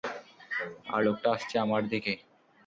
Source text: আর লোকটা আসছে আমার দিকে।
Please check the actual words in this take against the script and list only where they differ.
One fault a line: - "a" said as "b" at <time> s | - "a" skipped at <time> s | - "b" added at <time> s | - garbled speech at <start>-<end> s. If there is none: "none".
none